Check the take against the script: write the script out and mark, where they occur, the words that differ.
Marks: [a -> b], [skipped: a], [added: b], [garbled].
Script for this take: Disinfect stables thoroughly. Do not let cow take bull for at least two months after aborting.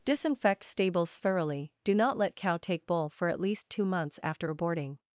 Disinfect stables thoroughly. Do not let cow take bull for at least two months after aborting.